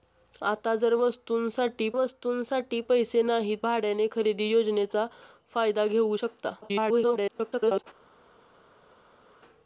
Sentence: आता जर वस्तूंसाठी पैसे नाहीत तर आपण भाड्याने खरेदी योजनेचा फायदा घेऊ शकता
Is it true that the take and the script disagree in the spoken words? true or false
true